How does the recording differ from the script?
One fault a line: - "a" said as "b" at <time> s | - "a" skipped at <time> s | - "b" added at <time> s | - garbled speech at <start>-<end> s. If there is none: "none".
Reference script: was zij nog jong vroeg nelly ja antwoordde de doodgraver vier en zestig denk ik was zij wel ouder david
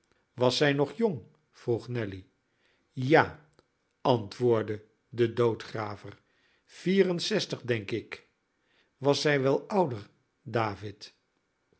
none